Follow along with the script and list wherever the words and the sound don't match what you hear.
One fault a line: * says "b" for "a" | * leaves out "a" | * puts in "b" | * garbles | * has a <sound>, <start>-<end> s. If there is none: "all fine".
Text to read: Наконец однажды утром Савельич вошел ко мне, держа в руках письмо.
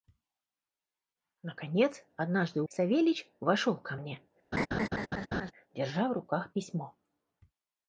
* leaves out "утром"
* has a laugh, 4.5-5.5 s